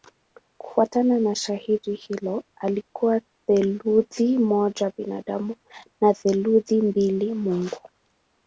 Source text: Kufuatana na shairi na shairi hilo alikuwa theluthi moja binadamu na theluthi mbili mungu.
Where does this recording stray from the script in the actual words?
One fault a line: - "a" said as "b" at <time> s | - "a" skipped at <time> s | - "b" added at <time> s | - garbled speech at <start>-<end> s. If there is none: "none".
- "na shairi" skipped at 1.9 s